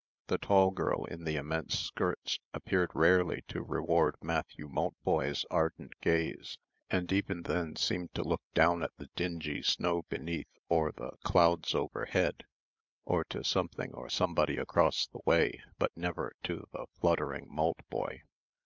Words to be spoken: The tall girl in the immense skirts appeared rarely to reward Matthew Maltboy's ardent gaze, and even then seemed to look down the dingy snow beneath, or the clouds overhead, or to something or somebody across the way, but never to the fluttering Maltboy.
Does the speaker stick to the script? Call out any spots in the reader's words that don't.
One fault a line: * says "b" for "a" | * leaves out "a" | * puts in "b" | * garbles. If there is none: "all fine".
* puts in "at"